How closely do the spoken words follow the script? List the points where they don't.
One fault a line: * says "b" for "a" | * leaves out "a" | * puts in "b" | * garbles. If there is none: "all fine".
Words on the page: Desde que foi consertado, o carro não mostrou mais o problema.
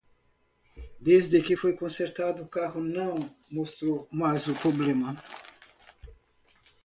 all fine